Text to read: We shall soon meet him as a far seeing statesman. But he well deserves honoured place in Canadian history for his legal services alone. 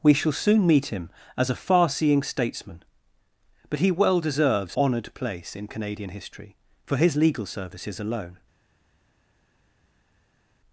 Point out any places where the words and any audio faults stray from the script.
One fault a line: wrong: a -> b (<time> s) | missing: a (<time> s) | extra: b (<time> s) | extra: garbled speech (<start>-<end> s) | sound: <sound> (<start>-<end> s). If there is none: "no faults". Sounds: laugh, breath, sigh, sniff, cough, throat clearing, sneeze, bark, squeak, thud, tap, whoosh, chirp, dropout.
no faults